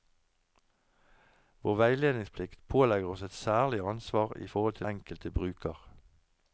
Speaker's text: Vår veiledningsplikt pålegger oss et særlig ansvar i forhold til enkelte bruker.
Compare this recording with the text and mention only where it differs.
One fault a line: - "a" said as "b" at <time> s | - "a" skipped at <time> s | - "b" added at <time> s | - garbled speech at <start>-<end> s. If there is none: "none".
none